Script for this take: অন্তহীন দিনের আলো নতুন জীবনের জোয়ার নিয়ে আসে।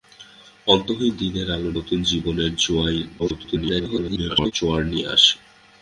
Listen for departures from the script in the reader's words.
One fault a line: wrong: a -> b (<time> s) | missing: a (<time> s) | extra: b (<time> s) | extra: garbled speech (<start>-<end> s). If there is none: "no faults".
extra: garbled speech (3.2-4.5 s)